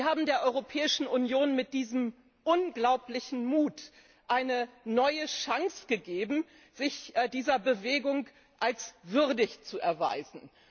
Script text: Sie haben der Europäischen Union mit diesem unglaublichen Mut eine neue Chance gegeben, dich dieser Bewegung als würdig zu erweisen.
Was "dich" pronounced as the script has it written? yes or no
no